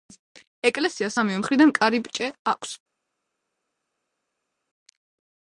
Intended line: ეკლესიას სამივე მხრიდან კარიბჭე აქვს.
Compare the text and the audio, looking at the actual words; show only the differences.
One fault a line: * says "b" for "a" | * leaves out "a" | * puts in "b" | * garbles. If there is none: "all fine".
all fine